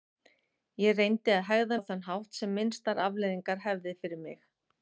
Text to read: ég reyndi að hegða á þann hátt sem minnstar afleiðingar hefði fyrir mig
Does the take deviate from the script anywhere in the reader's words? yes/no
no